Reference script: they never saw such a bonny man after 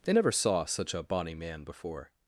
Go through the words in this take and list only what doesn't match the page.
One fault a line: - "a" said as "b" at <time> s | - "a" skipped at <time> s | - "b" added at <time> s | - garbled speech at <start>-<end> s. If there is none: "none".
- "after" said as "before" at 1.6 s